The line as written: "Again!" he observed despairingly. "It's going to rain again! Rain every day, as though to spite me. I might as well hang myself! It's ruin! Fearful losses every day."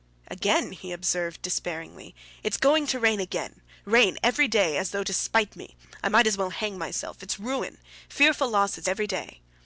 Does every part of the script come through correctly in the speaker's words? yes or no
yes